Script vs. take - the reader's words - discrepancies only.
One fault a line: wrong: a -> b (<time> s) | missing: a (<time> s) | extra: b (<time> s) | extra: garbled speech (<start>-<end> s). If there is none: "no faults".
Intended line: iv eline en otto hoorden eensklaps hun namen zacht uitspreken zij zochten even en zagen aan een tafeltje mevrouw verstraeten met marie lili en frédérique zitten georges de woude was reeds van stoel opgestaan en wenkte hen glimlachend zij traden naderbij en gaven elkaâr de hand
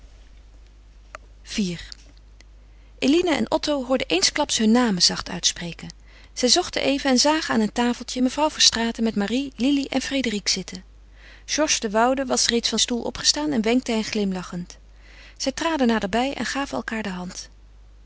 no faults